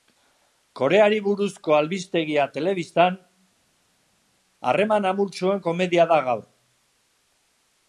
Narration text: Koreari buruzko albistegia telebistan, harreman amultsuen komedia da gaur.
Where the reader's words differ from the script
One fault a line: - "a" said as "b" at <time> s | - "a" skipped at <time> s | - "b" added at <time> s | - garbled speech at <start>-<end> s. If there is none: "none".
none